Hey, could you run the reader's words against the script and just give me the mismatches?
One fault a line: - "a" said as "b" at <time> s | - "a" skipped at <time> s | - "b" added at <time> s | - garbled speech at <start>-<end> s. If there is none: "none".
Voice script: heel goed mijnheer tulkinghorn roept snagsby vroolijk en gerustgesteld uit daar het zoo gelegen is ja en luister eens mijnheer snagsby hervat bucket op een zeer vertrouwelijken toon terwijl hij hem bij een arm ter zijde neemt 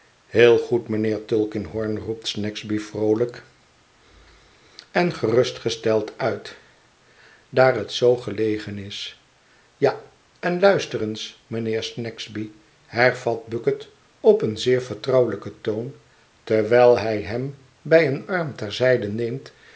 none